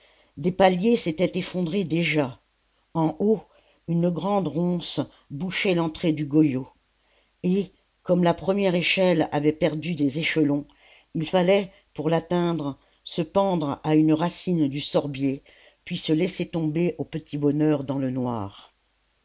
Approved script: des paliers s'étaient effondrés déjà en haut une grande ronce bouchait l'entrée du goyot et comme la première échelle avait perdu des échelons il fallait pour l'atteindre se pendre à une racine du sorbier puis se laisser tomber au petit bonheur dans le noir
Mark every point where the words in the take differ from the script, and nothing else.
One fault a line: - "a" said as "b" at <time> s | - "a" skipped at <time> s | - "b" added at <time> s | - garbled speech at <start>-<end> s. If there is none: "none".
none